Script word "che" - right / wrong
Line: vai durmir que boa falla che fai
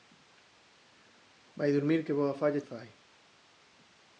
wrong